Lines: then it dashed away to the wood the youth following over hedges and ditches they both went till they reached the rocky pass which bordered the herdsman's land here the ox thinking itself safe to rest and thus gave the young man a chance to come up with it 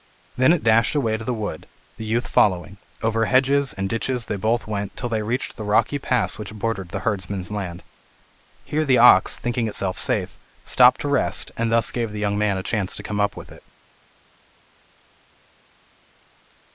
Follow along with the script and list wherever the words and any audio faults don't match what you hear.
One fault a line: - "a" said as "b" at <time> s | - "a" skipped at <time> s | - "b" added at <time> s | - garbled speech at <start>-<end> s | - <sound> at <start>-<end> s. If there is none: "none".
- "stopped" added at 10.6 s